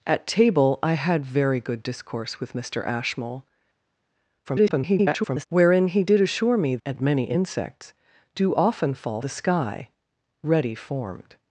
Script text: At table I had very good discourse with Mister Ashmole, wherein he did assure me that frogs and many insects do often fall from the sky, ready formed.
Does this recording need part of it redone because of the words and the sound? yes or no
yes